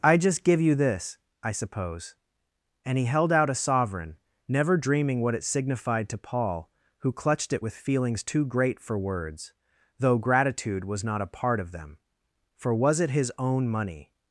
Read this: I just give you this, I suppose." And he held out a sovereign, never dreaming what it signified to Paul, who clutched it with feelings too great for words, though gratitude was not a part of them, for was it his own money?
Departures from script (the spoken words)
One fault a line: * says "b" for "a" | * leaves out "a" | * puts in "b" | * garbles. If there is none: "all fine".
all fine